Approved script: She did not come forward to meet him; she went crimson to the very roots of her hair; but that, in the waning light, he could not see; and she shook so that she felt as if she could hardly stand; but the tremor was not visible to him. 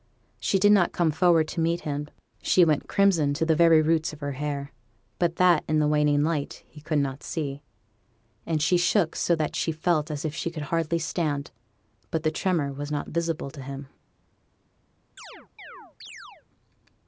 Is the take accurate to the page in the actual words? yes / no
yes